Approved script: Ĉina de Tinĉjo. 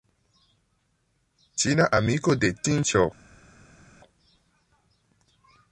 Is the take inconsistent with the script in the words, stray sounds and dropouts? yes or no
yes